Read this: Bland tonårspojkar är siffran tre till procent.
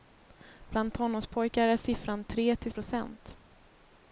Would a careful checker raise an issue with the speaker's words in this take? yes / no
no